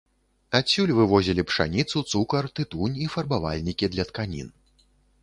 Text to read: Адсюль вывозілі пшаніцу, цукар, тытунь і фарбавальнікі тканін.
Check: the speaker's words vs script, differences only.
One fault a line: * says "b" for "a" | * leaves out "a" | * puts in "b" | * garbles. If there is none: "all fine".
* puts in "для"